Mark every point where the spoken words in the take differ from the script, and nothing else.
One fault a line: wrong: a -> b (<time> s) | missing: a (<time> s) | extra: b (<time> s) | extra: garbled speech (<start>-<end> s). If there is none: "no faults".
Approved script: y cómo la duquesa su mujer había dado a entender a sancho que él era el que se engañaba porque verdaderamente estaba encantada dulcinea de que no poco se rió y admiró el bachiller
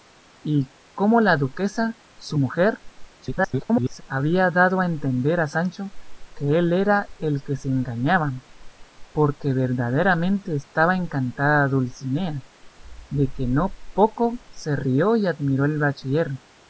extra: garbled speech (3.2-4.0 s)